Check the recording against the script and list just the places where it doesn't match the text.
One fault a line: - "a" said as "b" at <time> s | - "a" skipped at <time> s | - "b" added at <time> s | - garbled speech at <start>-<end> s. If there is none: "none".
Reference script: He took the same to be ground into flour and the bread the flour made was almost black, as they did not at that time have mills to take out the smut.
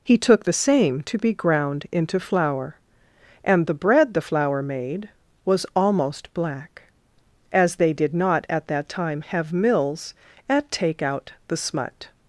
- "to" said as "at" at 10.5 s